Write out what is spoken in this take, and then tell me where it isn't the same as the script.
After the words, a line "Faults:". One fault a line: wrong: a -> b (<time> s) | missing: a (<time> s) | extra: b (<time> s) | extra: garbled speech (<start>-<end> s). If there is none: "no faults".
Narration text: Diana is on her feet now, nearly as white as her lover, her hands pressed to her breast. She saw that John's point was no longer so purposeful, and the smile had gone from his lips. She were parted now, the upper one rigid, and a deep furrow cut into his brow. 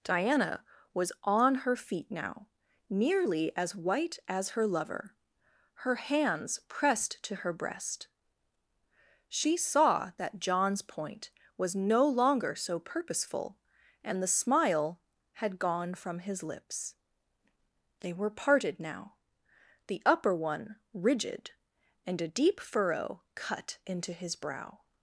Diana was on her feet now, nearly as white as her lover, her hands pressed to her breast. She saw that John's point was no longer so purposeful, and the smile had gone from his lips. They were parted now, the upper one rigid, and a deep furrow cut into his brow.
Faults:
wrong: is -> was (0.9 s)
wrong: She -> They (18.0 s)